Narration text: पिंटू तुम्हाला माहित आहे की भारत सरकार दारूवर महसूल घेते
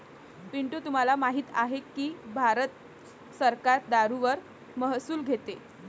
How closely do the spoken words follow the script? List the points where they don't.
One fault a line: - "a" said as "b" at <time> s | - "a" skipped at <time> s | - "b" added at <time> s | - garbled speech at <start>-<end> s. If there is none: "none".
none